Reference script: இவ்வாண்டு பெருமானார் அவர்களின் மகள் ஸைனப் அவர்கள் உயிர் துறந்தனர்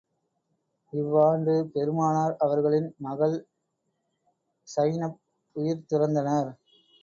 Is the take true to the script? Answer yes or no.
no